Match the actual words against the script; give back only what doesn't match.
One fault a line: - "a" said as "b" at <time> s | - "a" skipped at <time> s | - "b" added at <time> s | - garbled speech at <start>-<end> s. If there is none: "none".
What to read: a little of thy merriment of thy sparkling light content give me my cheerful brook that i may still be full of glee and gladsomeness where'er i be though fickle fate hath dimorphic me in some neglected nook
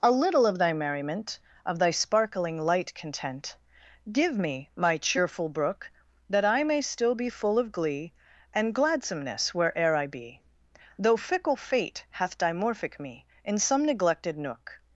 none